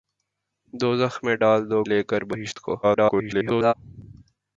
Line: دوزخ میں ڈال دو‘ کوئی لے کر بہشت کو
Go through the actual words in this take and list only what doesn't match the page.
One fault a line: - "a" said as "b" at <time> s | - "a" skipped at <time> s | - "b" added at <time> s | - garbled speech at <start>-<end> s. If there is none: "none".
- "کوئی" skipped at 1.8 s
- garbled speech at 2.8-3.7 s